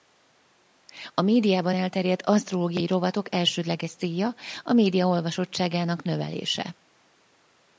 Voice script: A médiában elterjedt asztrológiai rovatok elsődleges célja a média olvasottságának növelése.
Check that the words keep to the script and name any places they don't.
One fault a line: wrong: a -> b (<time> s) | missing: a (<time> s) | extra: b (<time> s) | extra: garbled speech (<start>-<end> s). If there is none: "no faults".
no faults